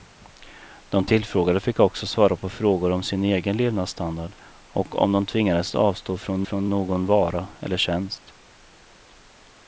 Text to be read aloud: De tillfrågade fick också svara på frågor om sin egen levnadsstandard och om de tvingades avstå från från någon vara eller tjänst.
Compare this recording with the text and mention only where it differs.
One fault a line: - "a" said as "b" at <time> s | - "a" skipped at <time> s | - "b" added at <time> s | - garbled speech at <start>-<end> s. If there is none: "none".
none